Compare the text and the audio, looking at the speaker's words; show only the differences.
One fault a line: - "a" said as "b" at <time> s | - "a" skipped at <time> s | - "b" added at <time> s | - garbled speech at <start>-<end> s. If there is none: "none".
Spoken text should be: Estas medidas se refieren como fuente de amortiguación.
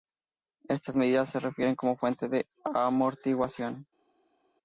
none